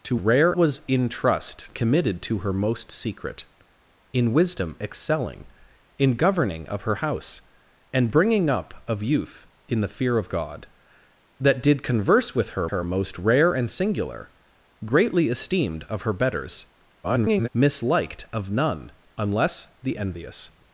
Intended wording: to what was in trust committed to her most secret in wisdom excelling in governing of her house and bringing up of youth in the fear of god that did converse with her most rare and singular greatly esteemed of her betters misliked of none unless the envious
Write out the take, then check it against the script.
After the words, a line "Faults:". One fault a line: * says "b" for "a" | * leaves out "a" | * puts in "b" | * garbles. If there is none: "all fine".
to rare was in trust committed to her most secret in wisdom excelling in governing of her house and bringing up of youth in the fear of god that did converse with her her most rare and singular greatly esteemed of her betters [garbled] misliked of none unless the envious
Faults:
* says "rare" for "what"
* puts in "her"
* garbles